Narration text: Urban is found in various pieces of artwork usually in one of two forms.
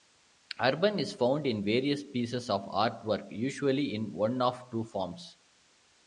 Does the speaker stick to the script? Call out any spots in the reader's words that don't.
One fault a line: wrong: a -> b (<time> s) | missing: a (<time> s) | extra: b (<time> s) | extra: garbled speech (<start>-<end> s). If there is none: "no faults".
no faults